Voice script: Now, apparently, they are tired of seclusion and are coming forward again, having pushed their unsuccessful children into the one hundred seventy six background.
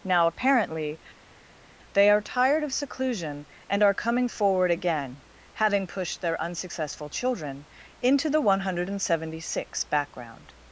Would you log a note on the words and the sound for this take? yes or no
no